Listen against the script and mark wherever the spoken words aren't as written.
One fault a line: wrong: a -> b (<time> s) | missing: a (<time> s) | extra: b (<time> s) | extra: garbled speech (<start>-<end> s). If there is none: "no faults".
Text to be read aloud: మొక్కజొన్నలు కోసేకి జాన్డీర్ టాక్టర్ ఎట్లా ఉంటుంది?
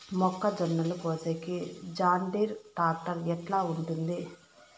no faults